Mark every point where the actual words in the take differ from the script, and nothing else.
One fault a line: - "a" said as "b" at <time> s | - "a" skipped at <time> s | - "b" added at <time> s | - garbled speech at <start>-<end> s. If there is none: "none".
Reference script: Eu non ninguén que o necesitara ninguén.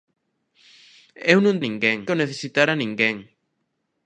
none